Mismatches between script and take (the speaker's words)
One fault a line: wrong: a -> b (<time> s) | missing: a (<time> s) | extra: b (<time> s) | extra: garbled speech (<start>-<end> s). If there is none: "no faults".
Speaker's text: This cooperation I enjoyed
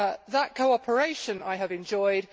wrong: This -> That (0.3 s)
extra: have (1.5 s)